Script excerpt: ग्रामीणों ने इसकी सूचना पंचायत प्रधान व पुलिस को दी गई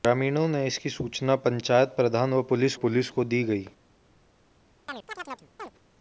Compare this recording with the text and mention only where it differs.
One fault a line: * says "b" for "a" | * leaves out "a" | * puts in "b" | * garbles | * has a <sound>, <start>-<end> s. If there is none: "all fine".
* puts in "पुलिस"
* has a chirp, 4.9-5.7 s